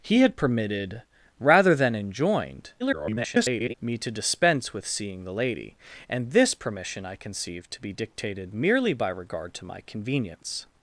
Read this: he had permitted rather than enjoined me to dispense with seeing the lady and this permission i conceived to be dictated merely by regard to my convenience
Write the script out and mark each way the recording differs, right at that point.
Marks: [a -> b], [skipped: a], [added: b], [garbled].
he had permitted rather than enjoined [garbled] me to dispense with seeing the lady and this permission i conceived to be dictated merely by regard to my convenience